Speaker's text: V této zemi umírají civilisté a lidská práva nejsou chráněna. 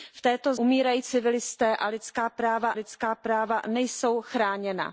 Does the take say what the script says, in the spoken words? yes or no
no